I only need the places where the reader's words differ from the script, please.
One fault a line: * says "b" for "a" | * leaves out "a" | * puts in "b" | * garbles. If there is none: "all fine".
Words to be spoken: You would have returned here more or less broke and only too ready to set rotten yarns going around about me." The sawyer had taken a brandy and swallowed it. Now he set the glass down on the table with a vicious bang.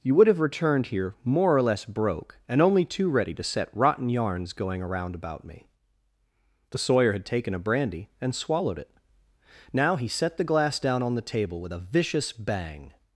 all fine